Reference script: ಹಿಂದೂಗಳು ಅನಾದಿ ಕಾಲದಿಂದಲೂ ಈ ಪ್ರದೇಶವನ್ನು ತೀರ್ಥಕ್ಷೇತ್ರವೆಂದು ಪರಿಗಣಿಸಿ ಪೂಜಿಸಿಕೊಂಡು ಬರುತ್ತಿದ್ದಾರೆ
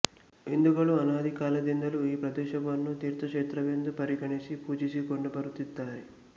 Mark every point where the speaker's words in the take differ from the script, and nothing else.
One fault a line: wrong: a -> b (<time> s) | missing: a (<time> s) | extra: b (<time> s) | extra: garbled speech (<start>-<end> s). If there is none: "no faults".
no faults